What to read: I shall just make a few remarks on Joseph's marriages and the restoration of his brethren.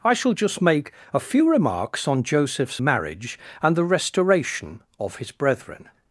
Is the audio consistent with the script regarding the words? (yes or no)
no